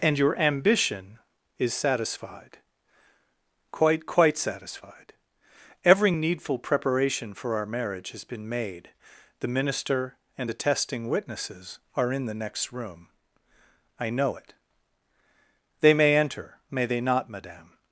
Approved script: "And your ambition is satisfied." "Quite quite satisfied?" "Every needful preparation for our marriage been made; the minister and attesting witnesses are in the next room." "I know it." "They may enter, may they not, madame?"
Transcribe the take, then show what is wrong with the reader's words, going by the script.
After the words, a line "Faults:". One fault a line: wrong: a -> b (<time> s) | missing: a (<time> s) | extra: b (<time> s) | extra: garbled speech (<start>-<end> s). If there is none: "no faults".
"And your ambition is satisfied." "Quite quite satisfied?" "Every needful preparation for our marriage has been made; the minister and attesting witnesses are in the next room." "I know it." "They may enter, may they not, madame?"
Faults:
extra: has (8.1 s)